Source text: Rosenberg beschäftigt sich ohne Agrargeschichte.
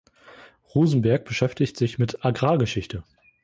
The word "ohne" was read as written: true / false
false